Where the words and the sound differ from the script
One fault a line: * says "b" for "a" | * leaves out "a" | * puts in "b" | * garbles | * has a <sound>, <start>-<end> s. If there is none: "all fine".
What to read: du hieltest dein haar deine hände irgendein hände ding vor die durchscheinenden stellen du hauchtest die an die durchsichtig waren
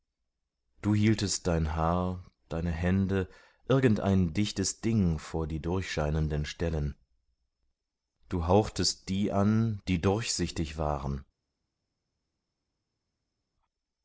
* says "dichtes" for "hände"